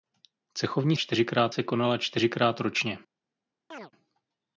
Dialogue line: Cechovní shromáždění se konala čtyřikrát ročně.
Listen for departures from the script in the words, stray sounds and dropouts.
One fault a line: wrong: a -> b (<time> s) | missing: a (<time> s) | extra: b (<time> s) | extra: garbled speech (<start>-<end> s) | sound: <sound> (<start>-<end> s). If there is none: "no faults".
wrong: shromáždění -> čtyřikrát (0.9 s)
sound: chirp (3.7-3.9 s)